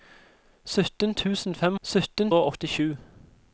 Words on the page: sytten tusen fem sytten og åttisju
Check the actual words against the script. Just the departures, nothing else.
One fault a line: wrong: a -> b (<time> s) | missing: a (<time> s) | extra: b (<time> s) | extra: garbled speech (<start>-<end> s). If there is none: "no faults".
no faults